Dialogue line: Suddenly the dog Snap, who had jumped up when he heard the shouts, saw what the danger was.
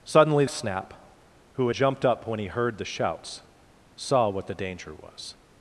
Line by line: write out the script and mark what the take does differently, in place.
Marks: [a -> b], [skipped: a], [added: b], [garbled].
Suddenly [skipped: the dog] Snap, who [skipped: had] jumped up when he heard the shouts, saw what the danger was.